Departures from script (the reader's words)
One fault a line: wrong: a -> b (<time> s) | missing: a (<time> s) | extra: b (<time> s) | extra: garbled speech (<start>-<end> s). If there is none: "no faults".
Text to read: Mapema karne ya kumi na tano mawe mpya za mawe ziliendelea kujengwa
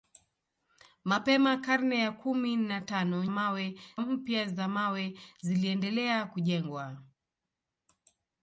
no faults